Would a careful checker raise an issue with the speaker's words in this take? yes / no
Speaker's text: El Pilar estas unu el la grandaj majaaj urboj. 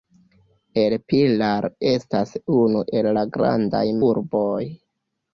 yes